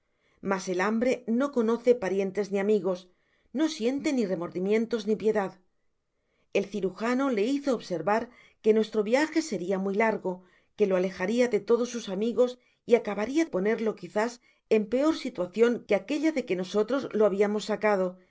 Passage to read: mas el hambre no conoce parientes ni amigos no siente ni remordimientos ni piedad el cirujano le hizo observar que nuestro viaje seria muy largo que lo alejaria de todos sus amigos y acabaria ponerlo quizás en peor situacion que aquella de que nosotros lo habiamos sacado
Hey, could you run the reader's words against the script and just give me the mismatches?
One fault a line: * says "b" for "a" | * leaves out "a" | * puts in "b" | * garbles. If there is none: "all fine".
all fine